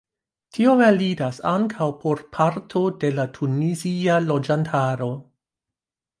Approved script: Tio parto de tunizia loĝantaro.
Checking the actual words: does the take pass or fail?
fail